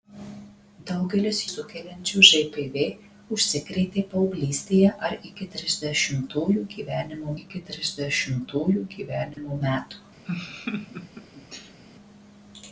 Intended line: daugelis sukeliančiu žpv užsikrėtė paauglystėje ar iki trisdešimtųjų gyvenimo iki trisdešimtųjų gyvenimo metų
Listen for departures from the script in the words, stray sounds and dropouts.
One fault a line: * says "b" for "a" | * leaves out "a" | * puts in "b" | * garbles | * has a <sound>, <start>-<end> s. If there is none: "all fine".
* has a dropout, 9.3-9.4 s
* has a laugh, 10.2-11.8 s